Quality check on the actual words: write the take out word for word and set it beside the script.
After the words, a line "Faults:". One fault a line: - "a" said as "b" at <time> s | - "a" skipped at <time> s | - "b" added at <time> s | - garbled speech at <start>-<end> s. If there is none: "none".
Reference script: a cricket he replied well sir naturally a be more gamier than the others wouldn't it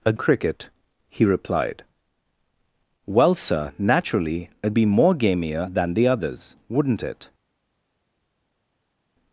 a cricket he replied well sir naturally a be more gamier than the others wouldn't it
Faults:
none